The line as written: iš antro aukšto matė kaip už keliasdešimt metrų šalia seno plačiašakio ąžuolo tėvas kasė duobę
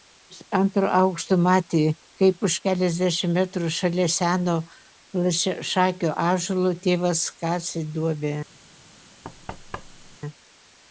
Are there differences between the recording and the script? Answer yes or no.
no